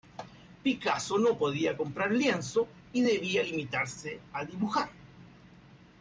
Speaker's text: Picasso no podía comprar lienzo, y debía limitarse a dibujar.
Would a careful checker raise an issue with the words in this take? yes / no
no